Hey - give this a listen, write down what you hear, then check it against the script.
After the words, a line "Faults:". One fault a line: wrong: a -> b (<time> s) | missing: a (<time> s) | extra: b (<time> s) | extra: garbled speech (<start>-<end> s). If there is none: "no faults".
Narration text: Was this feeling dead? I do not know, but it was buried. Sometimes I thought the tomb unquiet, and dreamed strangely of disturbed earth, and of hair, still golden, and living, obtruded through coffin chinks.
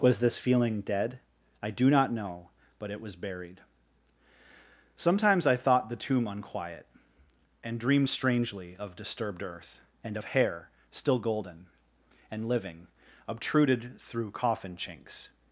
Was this feeling dead? I do not know, but it was buried. Sometimes I thought the tomb unquiet, and dreamed strangely of disturbed earth, and of hair, still golden, and living, obtruded through coffin chinks.
Faults:
no faults